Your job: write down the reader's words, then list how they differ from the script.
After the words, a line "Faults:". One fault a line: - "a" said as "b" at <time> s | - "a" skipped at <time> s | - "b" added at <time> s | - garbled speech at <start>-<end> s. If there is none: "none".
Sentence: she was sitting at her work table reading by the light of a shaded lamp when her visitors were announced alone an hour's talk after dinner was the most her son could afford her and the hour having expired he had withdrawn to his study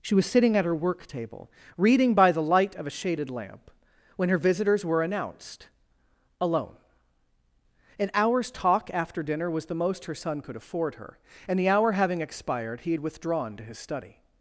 she was sitting at her work table reading by the light of a shaded lamp when her visitors were announced alone an hour's talk after dinner was the most her son could afford her and the hour having expired he had withdrawn to his study
Faults:
none